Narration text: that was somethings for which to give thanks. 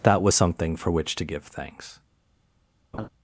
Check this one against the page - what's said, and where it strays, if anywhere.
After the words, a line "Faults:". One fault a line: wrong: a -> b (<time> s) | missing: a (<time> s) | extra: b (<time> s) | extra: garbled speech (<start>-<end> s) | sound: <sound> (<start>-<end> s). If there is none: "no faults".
that was something for which to give thanks.
Faults:
wrong: somethings -> something (0.3 s)
sound: laugh (2.9-3.1 s)